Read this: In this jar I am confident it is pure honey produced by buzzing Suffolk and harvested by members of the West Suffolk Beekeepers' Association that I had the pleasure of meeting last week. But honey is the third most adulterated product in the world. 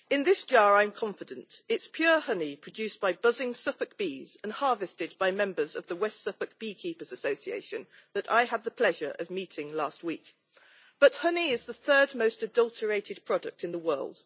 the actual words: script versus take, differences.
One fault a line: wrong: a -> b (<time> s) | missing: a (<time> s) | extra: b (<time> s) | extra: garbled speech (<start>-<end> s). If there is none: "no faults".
extra: bees (4.0 s)